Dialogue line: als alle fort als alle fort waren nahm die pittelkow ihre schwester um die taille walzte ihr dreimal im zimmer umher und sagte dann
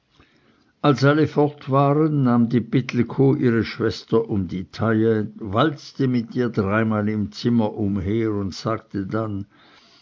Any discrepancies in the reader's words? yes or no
yes